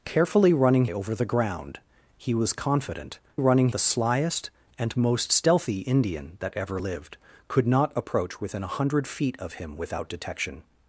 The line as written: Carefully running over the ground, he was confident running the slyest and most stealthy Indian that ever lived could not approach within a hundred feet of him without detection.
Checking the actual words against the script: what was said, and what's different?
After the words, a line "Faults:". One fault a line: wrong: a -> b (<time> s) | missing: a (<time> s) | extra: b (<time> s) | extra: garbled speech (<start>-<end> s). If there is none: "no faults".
Carefully running over the ground, he was confident running the slyest and most stealthy Indian that ever lived could not approach within a hundred feet of him without detection.
Faults:
no faults